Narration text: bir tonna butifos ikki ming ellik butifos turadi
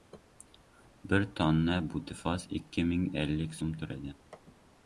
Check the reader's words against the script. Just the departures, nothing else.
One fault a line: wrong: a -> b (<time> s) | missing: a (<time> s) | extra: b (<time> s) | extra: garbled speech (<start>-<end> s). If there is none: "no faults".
wrong: butifos -> so‘m (3.6 s)